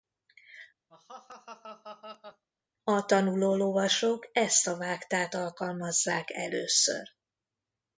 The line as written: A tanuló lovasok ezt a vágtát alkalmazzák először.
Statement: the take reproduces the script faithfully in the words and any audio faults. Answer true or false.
false